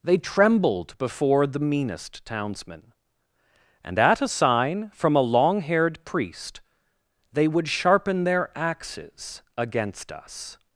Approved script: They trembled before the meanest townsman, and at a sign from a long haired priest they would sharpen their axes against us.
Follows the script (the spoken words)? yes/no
yes